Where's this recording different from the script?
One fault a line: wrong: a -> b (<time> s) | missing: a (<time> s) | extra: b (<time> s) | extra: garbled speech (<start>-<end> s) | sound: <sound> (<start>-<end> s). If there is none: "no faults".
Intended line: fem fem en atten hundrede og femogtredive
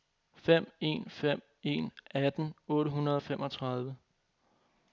extra: en (0.8 s)
extra: otte (2.7 s)